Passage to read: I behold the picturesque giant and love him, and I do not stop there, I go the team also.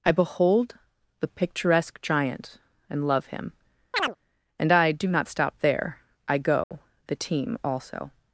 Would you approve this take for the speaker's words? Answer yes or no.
yes